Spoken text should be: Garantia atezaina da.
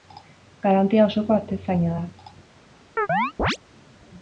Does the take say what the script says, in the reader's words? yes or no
no